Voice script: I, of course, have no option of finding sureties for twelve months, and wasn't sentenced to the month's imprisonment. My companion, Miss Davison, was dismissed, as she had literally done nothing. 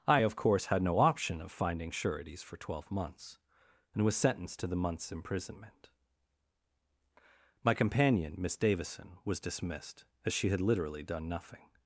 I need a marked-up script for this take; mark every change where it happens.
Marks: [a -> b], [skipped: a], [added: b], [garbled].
I, of course, [have -> had] no option of finding sureties for twelve months, and [wasn't -> was] sentenced to the month's imprisonment. My companion, Miss Davison, was dismissed, as she had literally done nothing.